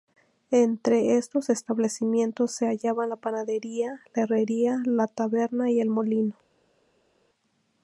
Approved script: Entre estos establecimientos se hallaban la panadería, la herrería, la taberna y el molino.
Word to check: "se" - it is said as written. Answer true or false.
true